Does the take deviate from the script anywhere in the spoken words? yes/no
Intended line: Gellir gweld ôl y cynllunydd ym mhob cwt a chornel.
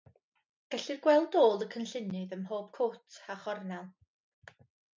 no